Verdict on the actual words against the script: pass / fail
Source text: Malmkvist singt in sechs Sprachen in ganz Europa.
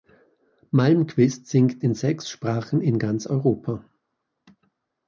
pass